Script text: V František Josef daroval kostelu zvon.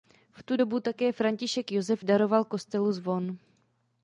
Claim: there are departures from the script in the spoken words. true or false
true